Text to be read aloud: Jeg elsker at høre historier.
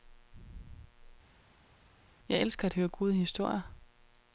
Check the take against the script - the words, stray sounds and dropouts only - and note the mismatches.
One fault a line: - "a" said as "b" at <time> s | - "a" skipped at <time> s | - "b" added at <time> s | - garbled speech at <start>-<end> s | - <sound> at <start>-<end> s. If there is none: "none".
- "gode" added at 2.9 s